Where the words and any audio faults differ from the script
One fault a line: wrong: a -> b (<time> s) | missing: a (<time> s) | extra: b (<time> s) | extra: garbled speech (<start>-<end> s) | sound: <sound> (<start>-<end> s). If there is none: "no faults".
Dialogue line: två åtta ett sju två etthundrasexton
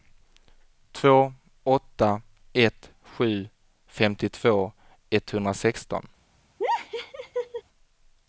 wrong: två -> femtiotvå (3.9 s)
sound: laugh (6.6-7.6 s)